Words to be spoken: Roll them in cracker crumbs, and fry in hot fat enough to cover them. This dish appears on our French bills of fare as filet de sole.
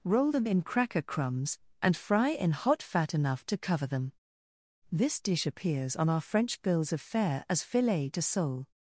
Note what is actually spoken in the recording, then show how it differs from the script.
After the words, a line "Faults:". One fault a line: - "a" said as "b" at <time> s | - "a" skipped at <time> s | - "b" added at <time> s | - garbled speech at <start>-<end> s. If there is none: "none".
Roll them in cracker crumbs, and fry in hot fat enough to cover them. This dish appears on our French bills of fare as filet de sole.
Faults:
none